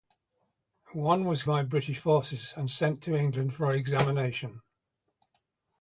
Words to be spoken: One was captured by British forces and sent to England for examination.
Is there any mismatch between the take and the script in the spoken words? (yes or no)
yes